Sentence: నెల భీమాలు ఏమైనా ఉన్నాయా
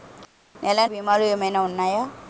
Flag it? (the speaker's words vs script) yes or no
no